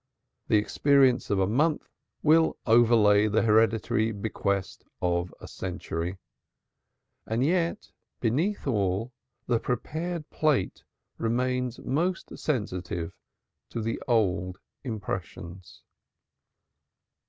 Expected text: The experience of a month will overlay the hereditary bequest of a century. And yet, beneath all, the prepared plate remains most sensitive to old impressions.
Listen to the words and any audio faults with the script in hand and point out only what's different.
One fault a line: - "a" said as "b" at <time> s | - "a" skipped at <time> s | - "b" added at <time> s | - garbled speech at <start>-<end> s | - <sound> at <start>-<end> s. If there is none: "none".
- "the" added at 13.8 s